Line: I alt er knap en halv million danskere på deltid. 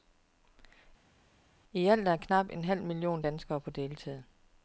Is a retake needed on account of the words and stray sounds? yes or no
no